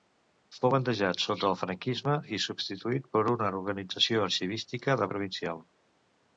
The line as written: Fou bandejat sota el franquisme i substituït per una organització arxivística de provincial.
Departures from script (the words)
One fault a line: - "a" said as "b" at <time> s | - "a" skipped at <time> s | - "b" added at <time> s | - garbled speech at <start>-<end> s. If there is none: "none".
none